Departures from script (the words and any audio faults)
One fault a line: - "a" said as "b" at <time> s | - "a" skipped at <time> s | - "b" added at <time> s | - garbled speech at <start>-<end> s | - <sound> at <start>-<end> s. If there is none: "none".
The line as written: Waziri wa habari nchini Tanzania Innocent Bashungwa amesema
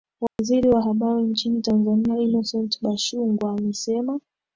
- dropout at 0.3-0.4 s